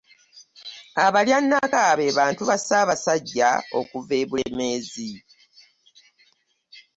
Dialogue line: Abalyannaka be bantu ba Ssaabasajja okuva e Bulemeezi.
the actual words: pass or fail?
pass